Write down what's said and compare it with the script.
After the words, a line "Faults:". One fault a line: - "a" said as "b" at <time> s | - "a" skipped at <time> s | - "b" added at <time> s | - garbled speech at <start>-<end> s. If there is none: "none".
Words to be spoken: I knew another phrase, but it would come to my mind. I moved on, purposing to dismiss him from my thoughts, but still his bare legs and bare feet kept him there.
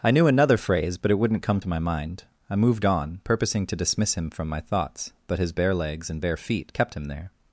I knew another phrase, but it wouldn't come to my mind. I moved on, purposing to dismiss him from my thoughts, but his bare legs and bare feet kept him there.
Faults:
- "would" said as "wouldn't" at 1.2 s
- "still" skipped at 5.4 s